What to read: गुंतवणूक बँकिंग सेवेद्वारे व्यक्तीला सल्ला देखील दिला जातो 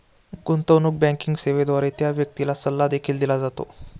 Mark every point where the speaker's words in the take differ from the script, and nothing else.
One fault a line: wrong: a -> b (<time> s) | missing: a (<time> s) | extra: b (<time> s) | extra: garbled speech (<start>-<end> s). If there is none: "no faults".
extra: त्या (2.0 s)